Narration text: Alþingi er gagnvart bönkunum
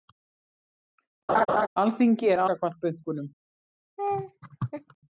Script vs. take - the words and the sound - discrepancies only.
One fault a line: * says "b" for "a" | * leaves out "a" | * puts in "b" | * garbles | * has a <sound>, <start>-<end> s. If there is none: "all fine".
* has a laugh, 1.3-1.7 s
* has a laugh, 4.0-5.0 s